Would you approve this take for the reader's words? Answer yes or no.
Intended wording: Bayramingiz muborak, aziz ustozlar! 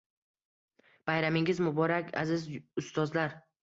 yes